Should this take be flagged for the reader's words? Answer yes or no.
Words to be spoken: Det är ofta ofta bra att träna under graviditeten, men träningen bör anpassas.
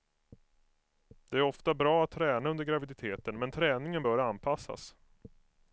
yes